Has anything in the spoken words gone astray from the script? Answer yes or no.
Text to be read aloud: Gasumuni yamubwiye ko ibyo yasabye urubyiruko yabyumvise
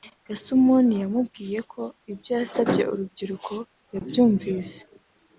no